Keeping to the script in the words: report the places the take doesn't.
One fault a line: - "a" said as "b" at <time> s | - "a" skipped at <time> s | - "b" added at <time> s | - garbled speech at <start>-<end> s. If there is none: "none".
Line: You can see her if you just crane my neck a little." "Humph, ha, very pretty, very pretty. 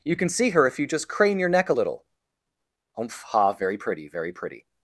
- "my" said as "your" at 1.4 s